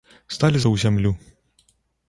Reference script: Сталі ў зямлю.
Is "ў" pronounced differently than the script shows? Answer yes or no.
no